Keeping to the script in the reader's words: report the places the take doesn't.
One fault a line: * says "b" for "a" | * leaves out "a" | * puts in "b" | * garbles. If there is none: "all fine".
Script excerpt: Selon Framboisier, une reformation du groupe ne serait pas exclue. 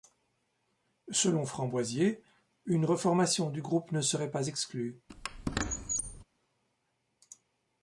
all fine